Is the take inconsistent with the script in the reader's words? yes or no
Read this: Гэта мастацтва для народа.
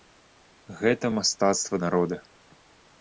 yes